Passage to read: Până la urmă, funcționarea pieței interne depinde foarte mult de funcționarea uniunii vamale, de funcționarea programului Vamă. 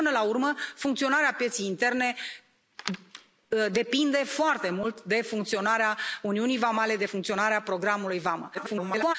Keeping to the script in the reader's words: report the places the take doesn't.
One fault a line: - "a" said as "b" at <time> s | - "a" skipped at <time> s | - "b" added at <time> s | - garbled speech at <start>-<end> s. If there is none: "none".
- garbled speech at 8.5-9.1 s